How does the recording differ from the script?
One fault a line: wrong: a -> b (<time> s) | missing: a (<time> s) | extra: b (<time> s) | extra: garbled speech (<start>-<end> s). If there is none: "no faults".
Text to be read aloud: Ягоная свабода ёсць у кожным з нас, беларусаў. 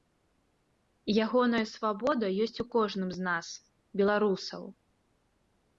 no faults